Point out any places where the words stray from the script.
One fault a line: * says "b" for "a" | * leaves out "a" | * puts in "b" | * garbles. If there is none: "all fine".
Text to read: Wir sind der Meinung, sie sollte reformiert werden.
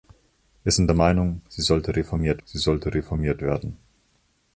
* puts in "sie sollte reformiert"